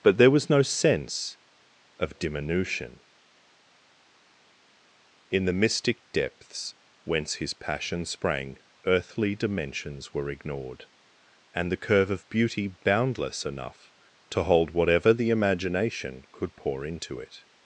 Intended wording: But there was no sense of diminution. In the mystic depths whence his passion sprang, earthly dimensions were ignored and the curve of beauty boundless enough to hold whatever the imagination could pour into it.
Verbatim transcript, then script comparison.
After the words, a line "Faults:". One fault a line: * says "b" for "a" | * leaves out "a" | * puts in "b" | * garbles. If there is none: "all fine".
But there was no sense of diminution. In the mystic depths whence his passion sprang, earthly dimensions were ignored and the curve of beauty boundless enough to hold whatever the imagination could pour into it.
Faults:
all fine